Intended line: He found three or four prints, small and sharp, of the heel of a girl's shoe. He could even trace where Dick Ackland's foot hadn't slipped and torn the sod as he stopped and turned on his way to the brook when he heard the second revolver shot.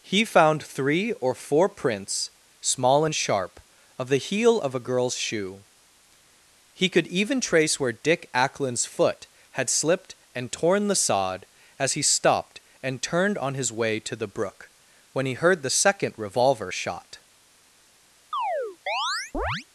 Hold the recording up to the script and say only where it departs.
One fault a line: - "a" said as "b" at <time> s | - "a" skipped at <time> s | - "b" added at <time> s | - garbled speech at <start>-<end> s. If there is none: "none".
- "hadn't" said as "had" at 9.5 s